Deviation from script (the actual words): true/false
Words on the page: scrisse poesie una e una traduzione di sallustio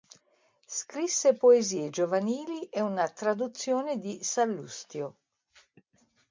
true